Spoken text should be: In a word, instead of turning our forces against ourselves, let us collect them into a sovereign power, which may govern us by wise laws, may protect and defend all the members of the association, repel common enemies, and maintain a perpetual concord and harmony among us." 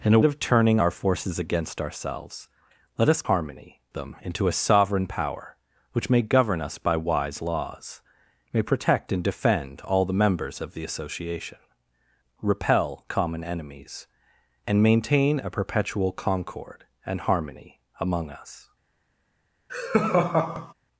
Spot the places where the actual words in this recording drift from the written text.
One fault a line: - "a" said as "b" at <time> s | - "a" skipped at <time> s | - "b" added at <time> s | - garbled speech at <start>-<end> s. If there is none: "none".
- "word instead" skipped at 0.2 s
- "collect" said as "harmony" at 3.2 s